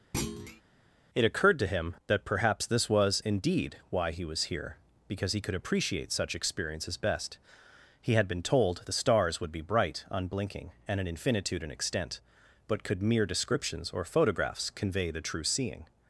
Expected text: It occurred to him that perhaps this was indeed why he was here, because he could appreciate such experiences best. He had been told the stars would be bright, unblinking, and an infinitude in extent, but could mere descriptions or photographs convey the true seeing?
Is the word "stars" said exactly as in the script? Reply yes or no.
yes